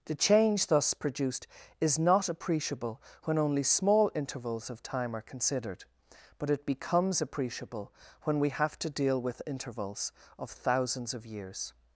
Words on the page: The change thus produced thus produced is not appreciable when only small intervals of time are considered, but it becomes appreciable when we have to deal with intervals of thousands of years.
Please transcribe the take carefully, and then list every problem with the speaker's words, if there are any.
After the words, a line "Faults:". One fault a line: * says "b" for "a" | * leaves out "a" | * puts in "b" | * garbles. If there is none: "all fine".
The change thus produced is not appreciable when only small intervals of time are considered, but it becomes appreciable when we have to deal with intervals of thousands of years.
Faults:
* leaves out "thus produced"